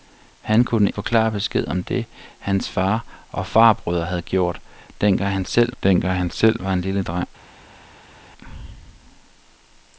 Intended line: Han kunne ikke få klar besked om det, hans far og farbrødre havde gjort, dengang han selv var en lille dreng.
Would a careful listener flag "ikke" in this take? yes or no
yes